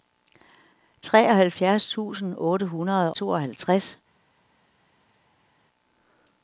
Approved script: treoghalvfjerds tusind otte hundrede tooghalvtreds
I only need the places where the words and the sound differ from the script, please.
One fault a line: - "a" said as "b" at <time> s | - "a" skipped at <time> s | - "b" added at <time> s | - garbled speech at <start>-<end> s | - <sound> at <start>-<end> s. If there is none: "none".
none